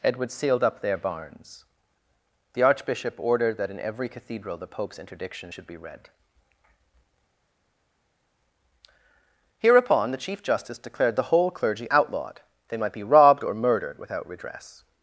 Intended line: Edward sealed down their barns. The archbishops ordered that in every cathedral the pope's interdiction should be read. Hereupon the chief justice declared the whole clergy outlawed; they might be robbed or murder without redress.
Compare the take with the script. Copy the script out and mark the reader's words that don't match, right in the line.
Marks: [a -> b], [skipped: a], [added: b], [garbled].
Edward sealed [down -> up] their barns. The [archbishops -> archbishop] ordered that in every cathedral the pope's interdiction should be read. Hereupon the chief justice declared the whole clergy outlawed; they might be robbed or [murder -> murdered] without redress.